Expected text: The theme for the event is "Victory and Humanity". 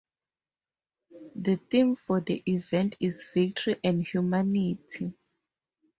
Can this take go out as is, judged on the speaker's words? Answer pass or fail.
pass